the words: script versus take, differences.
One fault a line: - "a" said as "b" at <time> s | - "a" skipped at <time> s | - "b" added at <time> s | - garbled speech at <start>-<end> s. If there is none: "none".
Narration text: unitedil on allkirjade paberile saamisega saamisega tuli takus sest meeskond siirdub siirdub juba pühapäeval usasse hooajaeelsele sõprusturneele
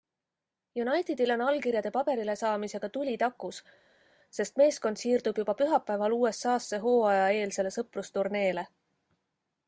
- "saamisega" skipped at 2.9 s
- "siirdub" skipped at 5.4 s